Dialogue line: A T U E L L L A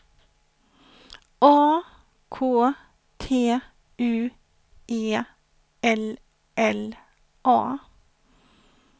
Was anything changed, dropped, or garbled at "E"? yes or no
no